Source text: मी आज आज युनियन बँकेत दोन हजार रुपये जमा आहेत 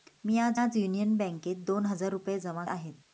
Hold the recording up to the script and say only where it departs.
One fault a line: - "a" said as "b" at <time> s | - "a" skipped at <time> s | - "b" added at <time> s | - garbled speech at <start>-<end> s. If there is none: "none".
none